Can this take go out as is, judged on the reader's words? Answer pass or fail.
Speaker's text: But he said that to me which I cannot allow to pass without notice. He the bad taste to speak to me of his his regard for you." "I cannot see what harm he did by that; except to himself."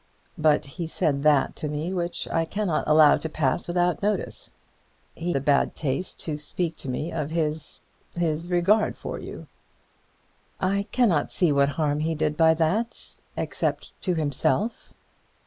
pass